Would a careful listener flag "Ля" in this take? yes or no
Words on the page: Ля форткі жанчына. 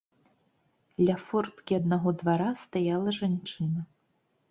no